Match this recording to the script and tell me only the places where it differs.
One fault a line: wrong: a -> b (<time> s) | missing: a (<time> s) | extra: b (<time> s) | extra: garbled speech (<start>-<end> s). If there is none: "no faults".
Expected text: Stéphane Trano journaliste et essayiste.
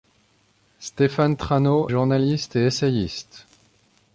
no faults